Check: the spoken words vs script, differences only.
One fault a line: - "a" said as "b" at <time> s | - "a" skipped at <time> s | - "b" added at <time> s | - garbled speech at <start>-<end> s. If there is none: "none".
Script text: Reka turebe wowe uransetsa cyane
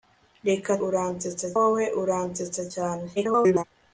- "turebe" said as "uransetsa" at 0.9 s
- garbled speech at 3.2-3.6 s